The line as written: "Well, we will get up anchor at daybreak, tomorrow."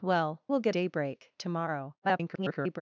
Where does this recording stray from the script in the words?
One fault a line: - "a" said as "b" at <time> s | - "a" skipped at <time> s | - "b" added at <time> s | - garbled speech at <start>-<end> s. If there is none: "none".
- "we" skipped at 0.4 s
- "up anchor at" skipped at 0.7 s
- garbled speech at 2.0-2.8 s